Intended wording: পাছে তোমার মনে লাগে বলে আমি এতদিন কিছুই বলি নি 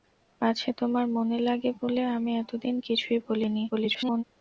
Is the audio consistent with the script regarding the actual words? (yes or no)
no